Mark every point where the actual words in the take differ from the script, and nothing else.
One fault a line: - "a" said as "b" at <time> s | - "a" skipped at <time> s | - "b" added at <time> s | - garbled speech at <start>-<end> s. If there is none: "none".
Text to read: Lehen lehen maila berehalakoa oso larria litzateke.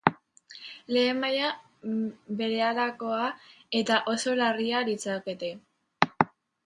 - "lehen" skipped at 1.2 s
- "eta" added at 3.8 s